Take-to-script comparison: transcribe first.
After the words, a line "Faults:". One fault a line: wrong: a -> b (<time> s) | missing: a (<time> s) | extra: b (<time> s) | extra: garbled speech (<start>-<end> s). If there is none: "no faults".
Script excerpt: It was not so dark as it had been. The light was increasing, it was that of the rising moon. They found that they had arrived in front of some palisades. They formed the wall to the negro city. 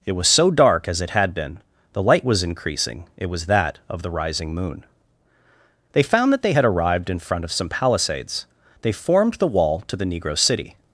It was so dark as it had been. The light was increasing, it was that of the rising moon. They found that they had arrived in front of some palisades. They formed the wall to the negro city.
Faults:
missing: not (0.3 s)